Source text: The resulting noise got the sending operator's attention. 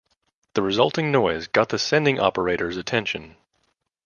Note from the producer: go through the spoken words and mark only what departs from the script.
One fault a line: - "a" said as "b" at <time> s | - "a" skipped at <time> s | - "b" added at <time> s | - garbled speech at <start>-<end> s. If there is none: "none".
none